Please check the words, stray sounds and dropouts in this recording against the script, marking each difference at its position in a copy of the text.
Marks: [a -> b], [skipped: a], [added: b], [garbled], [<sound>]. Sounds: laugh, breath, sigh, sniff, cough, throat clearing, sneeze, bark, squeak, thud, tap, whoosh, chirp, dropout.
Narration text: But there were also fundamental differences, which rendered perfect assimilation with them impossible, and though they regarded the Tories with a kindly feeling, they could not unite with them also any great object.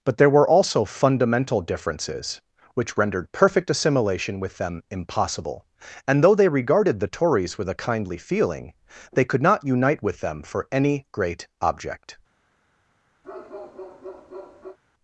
But there were also fundamental differences, which rendered perfect assimilation with them impossible, and though they regarded the Tories with a kindly feeling, they could not unite with them [also -> for] any great object. [bark]